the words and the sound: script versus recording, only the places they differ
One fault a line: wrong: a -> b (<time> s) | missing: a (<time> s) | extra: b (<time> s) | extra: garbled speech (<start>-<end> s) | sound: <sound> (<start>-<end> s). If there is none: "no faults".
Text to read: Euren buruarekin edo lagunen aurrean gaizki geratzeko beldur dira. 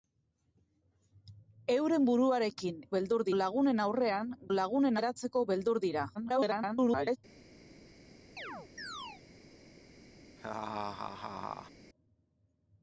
wrong: edo -> beldur (3.0 s)
wrong: gaizki -> lagunen (4.6 s)
extra: garbled speech (6.1-7.2 s)
sound: chirp (8.4-9.2 s)
sound: laugh (10.4-11.7 s)